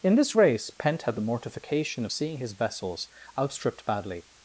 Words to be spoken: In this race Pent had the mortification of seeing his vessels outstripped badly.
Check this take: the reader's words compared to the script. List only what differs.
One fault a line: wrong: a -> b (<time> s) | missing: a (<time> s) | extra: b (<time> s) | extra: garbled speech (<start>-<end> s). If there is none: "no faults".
no faults